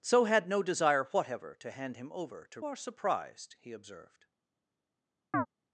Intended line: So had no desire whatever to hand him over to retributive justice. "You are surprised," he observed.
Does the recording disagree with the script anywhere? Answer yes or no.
yes